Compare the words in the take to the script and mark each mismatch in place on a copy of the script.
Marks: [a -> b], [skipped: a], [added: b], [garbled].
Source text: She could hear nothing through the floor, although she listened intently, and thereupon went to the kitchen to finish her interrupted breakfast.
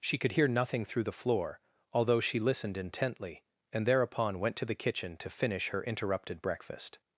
She could hear nothing through the floor, although she listened intently, and thereupon went to the kitchen to finish her interrupted breakfast.